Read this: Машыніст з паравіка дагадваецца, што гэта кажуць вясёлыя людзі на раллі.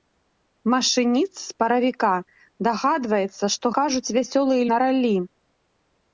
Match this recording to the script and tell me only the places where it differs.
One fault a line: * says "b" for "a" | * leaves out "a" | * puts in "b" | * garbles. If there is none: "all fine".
* leaves out "гэта"
* leaves out "людзі"